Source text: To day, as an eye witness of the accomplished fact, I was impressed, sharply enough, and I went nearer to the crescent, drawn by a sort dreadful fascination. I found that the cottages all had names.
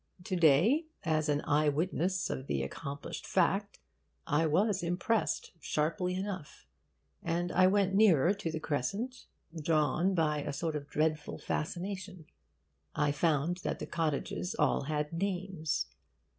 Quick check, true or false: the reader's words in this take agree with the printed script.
false